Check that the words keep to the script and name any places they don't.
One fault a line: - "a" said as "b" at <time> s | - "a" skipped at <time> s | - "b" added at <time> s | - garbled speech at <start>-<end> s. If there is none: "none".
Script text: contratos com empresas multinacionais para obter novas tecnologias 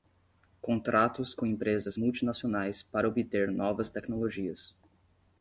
none